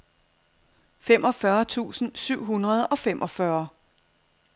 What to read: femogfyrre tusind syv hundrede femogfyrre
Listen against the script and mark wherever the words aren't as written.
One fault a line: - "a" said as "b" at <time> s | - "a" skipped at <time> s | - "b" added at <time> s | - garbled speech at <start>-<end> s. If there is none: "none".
- "og" added at 2.9 s